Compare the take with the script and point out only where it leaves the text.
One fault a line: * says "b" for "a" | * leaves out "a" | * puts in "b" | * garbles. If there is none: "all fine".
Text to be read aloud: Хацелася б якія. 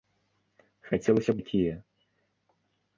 all fine